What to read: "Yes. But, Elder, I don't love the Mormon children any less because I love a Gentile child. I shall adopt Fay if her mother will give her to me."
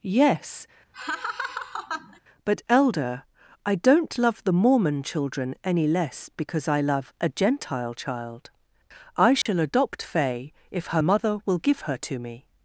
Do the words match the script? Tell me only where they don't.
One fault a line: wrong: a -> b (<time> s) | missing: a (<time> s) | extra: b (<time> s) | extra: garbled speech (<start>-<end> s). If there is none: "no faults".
no faults